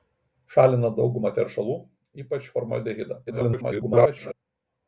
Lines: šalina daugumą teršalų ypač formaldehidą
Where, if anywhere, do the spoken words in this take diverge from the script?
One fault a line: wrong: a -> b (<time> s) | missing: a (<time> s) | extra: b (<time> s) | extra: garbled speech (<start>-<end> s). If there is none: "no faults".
extra: garbled speech (3.3-4.3 s)